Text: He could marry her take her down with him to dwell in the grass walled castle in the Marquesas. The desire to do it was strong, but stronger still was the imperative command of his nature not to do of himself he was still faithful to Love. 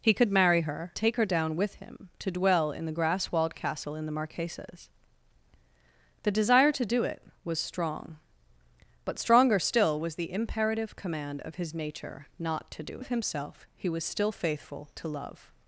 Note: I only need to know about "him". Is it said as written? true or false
true